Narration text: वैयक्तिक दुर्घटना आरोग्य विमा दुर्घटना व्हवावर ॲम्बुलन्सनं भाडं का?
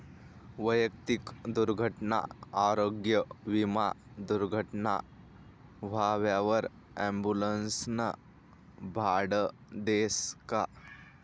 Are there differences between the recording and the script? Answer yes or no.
yes